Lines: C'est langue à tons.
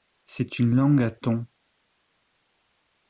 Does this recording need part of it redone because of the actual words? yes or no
yes